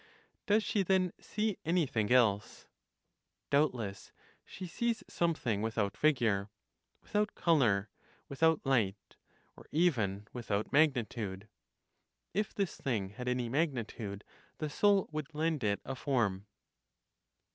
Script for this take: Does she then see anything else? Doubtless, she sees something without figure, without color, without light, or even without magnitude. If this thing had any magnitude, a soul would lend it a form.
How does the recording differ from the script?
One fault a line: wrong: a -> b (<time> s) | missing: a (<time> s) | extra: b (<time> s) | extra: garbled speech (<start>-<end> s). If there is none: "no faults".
wrong: a -> the (14.6 s)